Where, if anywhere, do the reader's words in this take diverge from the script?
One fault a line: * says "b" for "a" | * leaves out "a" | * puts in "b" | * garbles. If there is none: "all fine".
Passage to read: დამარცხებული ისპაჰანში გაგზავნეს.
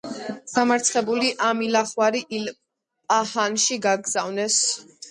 * puts in "ამილახვარი"